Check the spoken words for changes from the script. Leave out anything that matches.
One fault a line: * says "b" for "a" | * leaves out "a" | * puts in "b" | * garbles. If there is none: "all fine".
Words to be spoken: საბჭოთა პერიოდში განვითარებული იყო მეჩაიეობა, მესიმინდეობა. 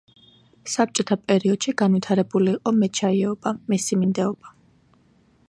all fine